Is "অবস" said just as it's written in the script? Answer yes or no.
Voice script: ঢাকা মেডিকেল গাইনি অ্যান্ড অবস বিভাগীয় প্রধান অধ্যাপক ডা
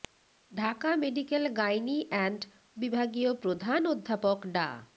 no